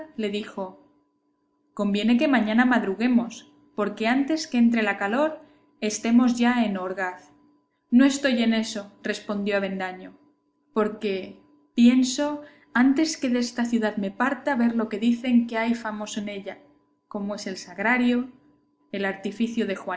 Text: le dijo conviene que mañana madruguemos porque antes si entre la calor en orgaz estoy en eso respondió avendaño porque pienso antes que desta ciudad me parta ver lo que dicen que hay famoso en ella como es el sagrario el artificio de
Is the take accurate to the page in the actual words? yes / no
no